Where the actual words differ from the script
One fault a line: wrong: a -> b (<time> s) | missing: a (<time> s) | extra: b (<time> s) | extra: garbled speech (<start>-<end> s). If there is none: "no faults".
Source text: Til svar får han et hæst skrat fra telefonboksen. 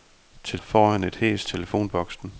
missing: svar (0.6 s)
missing: skrat fra (1.5 s)